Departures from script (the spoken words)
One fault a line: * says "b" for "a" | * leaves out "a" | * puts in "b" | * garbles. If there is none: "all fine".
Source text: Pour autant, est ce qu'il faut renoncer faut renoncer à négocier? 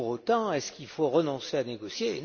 * leaves out "faut renoncer"